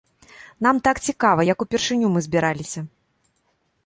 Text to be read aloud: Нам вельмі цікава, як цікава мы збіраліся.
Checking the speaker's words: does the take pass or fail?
fail